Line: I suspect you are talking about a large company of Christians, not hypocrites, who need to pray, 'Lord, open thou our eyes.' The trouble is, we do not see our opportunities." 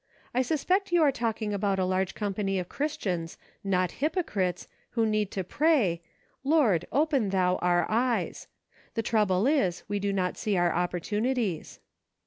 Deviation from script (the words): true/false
false